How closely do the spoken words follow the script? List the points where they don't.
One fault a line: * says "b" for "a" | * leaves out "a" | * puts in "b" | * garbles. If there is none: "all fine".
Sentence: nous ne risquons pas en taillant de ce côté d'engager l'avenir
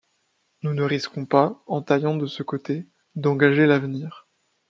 all fine